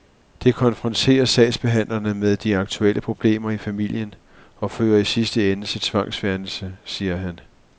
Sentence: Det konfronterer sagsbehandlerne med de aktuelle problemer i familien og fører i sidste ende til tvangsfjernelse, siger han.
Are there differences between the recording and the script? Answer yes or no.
no